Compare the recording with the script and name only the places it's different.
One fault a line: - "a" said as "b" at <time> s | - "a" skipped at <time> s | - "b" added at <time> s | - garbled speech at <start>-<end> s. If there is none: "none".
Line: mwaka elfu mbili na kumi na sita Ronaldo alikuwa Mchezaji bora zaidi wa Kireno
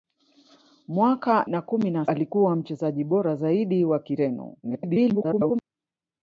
- "elfu mbili" skipped at 1.4 s
- "sita Ronaldo" skipped at 2.1 s
- garbled speech at 4.6-5.6 s